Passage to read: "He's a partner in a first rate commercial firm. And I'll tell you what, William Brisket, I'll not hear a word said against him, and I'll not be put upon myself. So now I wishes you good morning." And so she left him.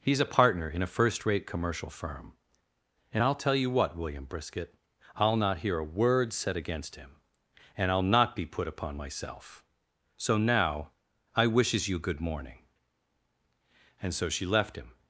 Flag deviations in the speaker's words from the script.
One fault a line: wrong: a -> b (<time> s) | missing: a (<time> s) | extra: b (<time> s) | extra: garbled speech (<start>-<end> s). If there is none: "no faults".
no faults